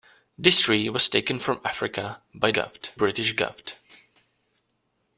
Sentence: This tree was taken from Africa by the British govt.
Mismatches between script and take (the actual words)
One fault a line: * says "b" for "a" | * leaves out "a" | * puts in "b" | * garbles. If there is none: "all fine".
* says "govt" for "the"